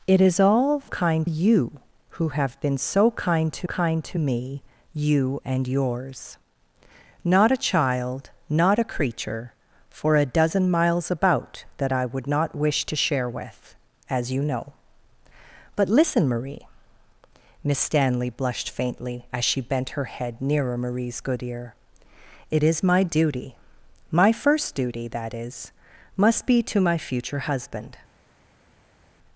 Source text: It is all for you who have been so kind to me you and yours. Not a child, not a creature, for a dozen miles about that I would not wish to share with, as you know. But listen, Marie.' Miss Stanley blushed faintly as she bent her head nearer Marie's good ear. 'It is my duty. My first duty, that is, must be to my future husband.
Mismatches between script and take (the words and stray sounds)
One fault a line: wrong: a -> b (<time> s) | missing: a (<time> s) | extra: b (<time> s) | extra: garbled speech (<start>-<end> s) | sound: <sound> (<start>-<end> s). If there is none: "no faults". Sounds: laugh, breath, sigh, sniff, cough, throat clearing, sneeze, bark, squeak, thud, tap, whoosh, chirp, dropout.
wrong: for -> kind (0.9 s)
extra: kind to (3.6 s)